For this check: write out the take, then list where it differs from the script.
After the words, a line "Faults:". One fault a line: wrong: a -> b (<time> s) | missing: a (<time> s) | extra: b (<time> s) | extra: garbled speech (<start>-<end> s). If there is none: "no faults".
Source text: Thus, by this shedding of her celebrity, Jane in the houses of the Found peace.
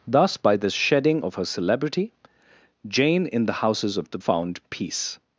Thus, by this shedding of her celebrity, Jane in the houses of the Found peace.
Faults:
no faults